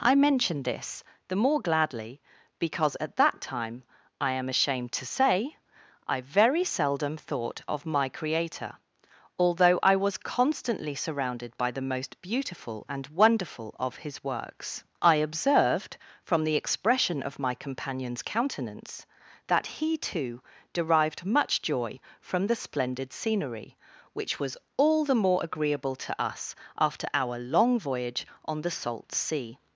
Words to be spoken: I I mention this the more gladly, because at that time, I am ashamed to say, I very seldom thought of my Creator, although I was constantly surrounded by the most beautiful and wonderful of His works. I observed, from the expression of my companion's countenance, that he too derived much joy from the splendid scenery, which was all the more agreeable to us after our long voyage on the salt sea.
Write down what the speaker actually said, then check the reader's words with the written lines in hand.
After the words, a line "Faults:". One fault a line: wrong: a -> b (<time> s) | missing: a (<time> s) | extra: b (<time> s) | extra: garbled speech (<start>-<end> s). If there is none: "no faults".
I mention this the more gladly, because at that time, I am ashamed to say, I very seldom thought of my Creator, although I was constantly surrounded by the most beautiful and wonderful of His works. I observed, from the expression of my companion's countenance, that he too derived much joy from the splendid scenery, which was all the more agreeable to us after our long voyage on the salt sea.
Faults:
missing: I (0.1 s)